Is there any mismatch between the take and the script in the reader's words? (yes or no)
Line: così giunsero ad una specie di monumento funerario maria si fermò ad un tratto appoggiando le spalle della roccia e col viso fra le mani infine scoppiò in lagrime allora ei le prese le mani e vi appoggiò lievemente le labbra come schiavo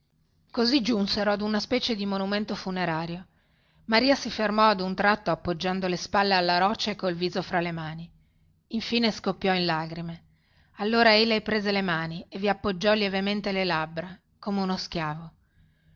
yes